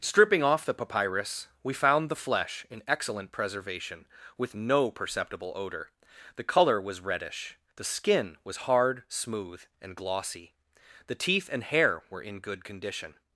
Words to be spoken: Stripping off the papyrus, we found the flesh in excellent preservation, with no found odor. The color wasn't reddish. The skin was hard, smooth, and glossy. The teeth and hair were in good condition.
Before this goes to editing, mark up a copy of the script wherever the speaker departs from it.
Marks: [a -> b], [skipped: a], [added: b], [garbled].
Stripping off the papyrus, we found the flesh in excellent preservation, with no [found -> perceptible] odor. The color [wasn't -> was] reddish. The skin was hard, smooth, and glossy. The teeth and hair were in good condition.